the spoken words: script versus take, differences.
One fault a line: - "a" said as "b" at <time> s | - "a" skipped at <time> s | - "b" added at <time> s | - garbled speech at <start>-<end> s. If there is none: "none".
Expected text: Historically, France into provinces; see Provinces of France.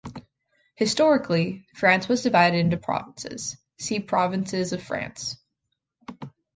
- "was divided" added at 2.1 s